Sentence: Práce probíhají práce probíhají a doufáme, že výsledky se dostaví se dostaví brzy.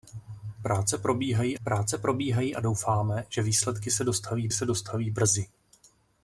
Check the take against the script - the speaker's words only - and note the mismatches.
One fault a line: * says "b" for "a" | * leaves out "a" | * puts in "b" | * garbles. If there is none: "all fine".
all fine